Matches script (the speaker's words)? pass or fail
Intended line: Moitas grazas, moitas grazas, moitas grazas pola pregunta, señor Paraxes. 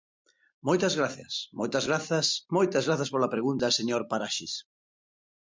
pass